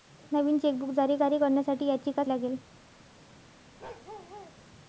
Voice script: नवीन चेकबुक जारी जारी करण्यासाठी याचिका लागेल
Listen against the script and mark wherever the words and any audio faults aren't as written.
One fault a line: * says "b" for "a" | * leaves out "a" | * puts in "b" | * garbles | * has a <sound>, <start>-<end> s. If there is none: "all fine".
* has a bark, 3.8-4.6 s